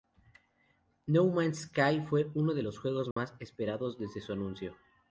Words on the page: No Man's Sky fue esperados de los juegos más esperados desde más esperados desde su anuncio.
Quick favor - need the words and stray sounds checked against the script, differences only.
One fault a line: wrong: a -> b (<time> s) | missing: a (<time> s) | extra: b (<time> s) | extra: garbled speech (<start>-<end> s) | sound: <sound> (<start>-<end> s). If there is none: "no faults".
wrong: esperados -> uno (2.3 s)
sound: dropout (3.1-3.2 s)
missing: más esperados desde (4.2 s)